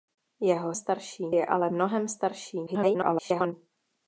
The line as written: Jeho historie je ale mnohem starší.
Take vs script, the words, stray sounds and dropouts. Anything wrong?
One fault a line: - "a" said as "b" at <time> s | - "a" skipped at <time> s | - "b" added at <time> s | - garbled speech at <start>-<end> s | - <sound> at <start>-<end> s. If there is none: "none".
- "historie" said as "starší" at 0.7 s
- garbled speech at 2.7-3.5 s